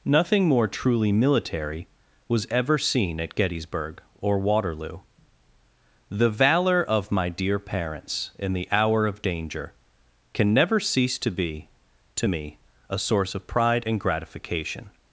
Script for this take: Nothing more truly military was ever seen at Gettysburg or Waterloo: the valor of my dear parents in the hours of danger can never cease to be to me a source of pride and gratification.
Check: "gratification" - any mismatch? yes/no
no